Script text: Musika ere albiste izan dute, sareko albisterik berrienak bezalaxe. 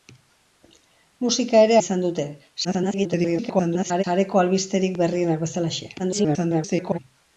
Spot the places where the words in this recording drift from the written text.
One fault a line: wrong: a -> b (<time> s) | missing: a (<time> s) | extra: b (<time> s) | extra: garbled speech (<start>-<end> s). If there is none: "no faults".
missing: albiste (1.8 s)
extra: garbled speech (2.6-4.0 s)
extra: garbled speech (6.0-7.0 s)